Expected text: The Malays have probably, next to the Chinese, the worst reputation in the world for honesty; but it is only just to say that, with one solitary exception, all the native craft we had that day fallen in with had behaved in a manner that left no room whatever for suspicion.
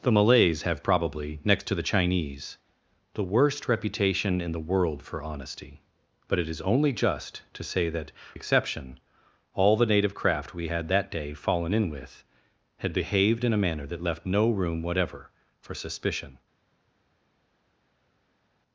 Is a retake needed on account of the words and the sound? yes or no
yes